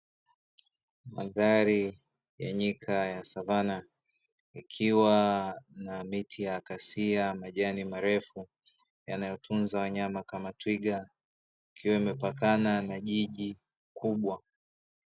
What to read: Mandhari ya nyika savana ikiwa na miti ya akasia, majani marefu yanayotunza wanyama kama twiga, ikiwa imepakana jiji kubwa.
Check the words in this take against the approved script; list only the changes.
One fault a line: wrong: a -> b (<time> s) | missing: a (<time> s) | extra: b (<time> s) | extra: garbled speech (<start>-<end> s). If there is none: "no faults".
extra: ya (3.0 s)
extra: na (12.8 s)